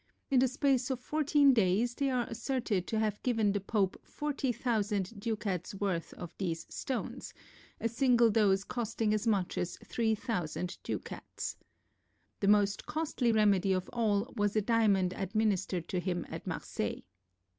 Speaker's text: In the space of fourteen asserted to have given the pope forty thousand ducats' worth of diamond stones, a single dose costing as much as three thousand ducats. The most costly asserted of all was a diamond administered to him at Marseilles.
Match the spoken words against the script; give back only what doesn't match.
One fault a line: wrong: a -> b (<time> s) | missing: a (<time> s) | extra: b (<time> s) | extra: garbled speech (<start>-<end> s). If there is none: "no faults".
extra: days they are (1.5 s)
wrong: diamond -> these (6.4 s)
wrong: asserted -> remedy (13.3 s)